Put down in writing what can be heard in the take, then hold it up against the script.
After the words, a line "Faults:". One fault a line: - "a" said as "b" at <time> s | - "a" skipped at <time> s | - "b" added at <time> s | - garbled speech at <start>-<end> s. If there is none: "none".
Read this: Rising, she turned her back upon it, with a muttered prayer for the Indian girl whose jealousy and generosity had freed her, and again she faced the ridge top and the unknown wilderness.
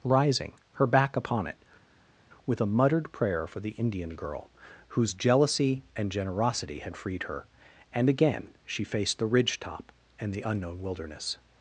Rising, her back upon it, with a muttered prayer for the Indian girl whose jealousy and generosity had freed her, and again she faced the ridge top and the unknown wilderness.
Faults:
- "she turned" skipped at 0.5 s